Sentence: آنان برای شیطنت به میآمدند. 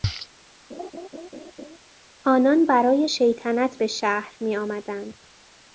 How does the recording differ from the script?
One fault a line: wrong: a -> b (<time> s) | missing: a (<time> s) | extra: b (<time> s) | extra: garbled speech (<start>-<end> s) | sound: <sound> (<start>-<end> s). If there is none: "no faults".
sound: laugh (0.7-1.8 s)
extra: شهر (3.9 s)